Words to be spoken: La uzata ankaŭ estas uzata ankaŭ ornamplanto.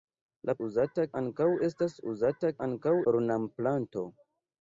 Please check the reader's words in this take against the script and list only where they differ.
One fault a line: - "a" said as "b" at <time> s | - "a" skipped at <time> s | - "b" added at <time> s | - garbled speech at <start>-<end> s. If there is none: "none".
none